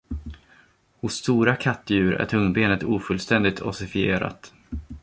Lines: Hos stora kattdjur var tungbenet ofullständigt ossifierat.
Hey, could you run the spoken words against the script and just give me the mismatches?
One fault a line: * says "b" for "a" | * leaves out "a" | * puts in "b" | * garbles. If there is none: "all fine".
* says "är" for "var"